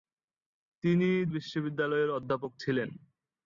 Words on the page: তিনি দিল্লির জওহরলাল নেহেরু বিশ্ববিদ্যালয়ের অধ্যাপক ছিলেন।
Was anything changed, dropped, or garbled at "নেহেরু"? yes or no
yes